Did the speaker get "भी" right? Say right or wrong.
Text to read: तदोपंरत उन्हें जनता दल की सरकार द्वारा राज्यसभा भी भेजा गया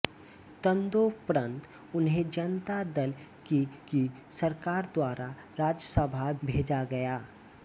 wrong